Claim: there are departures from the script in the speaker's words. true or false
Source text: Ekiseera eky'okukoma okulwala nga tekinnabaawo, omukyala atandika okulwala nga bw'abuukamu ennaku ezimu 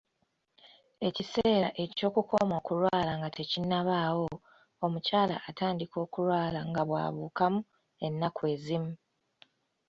false